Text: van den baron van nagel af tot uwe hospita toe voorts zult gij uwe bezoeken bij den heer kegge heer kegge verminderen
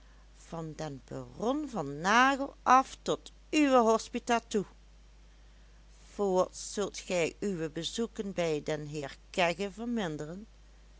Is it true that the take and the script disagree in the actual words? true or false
true